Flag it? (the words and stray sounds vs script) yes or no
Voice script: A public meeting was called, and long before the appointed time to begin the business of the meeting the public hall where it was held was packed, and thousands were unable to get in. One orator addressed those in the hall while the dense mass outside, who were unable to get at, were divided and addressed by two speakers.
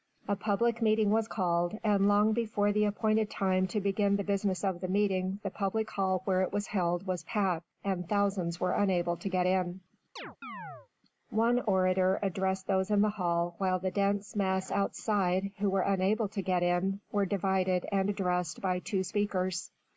yes